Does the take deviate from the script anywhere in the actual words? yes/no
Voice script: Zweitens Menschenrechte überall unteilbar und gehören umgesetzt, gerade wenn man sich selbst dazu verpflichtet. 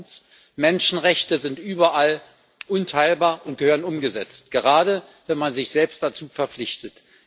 yes